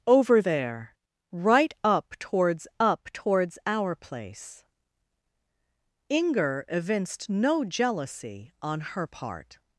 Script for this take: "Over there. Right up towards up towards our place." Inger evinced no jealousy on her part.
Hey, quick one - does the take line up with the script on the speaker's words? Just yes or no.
yes